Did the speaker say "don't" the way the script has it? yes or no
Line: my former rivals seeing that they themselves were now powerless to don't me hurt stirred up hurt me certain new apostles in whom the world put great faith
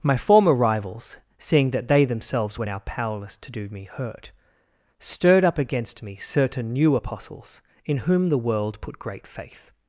no